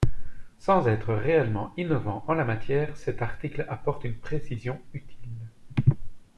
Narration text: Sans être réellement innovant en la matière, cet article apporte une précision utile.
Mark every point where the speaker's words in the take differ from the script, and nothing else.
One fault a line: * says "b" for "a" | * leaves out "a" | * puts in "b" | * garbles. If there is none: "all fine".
all fine